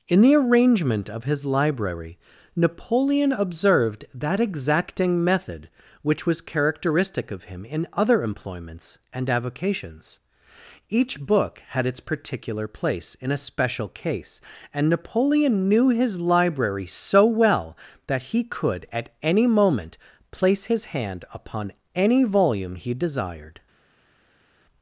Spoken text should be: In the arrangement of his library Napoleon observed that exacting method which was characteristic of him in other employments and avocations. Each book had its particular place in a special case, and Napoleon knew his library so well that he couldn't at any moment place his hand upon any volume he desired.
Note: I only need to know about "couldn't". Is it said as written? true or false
false